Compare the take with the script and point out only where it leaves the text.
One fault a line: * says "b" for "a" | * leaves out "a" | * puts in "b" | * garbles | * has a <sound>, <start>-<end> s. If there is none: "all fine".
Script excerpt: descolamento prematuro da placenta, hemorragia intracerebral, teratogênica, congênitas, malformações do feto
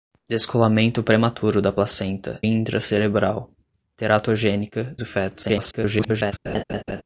* leaves out "hemorragia"
* leaves out "congênitas malformações"
* garbles
* has a laugh, 6.4-7.0 s